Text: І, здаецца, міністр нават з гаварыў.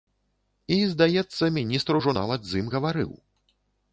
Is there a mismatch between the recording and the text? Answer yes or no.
yes